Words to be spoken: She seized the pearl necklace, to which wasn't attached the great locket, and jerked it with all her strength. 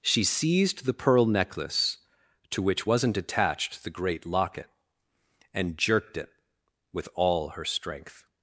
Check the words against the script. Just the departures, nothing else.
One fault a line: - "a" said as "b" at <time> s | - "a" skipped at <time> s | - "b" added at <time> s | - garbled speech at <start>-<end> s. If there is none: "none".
none